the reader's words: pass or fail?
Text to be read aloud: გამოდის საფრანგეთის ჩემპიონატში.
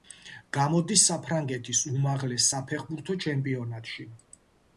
fail